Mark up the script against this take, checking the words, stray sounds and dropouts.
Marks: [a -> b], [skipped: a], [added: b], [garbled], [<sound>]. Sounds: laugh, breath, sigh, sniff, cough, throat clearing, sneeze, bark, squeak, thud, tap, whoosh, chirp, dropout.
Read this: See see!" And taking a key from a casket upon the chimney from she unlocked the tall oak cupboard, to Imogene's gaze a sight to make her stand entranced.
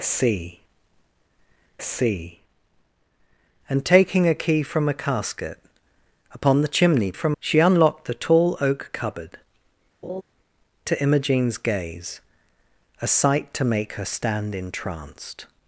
See see!" And taking a key from a casket upon the chimney from she unlocked the tall oak cupboard, [laugh] to Imogene's gaze a sight to make her stand entranced.